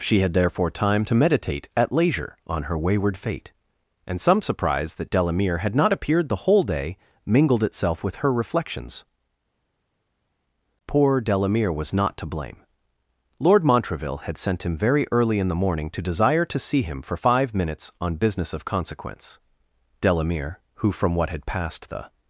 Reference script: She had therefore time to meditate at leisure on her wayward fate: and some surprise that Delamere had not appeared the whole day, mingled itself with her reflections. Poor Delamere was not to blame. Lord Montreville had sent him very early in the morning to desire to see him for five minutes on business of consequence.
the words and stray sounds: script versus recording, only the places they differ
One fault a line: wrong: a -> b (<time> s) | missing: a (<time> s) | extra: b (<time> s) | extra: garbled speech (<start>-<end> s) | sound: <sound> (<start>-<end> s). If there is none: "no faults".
extra: Delamere who from what had passed the (20.0 s)